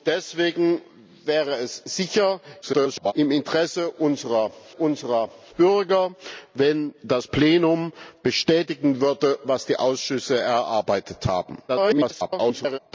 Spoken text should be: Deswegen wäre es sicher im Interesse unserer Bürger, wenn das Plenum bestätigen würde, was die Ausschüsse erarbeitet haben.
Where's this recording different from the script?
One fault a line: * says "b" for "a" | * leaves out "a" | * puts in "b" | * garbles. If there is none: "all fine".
* garbles
* puts in "unserer"
* garbles